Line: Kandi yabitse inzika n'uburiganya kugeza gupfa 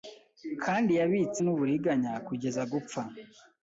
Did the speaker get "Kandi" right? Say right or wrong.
right